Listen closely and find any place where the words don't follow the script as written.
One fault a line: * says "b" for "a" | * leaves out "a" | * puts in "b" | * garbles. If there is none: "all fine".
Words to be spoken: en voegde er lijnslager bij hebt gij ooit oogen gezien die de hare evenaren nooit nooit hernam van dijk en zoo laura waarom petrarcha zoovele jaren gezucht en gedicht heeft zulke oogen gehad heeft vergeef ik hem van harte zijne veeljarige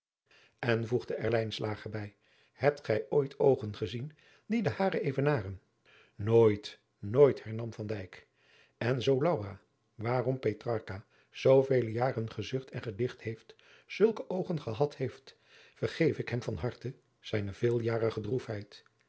all fine